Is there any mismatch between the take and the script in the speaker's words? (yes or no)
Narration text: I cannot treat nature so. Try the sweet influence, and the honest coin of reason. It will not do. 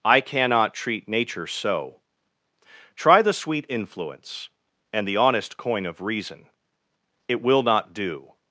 no